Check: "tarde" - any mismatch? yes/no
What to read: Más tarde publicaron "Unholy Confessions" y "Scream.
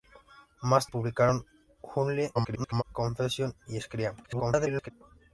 yes